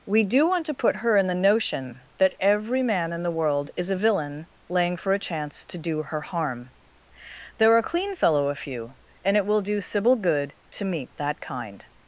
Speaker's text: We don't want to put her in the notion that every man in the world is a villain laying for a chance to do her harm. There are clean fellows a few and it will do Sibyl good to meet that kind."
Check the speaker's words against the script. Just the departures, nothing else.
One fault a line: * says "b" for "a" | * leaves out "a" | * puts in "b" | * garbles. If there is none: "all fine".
* says "do" for "don't"
* says "fellow" for "fellows"